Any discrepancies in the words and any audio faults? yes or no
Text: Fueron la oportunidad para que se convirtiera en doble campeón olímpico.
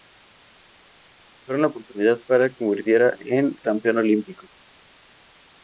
yes